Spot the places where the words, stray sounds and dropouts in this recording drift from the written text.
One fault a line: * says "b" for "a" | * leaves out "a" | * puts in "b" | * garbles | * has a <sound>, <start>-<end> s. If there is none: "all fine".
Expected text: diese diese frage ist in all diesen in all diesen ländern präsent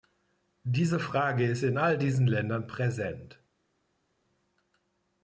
* leaves out "diese"
* leaves out "in all diesen"